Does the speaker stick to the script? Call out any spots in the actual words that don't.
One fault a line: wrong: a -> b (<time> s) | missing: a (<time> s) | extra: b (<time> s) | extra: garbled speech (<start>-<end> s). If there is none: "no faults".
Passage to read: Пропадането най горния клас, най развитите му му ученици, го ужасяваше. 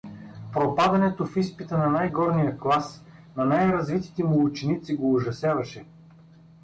extra: в изпита на (1.2 s)
extra: на (3.4 s)
missing: му (4.4 s)